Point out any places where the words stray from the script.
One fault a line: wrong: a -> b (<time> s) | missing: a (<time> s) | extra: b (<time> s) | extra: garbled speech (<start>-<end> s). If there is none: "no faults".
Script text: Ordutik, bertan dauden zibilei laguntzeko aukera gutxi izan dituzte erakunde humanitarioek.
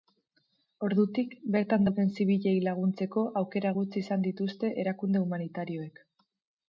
no faults